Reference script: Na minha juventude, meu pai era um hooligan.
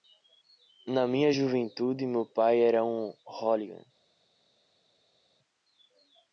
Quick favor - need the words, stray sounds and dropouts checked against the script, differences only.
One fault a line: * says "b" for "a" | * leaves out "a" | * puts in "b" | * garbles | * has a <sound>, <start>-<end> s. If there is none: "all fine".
all fine